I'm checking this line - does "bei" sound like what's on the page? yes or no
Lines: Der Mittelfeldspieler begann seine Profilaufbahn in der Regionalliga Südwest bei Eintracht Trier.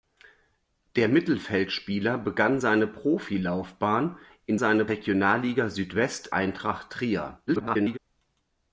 no